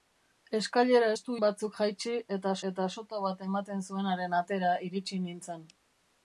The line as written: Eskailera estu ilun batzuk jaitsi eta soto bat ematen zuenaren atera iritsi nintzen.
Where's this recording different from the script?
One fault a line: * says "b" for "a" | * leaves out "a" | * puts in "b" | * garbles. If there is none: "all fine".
* leaves out "ilun"
* puts in "eta"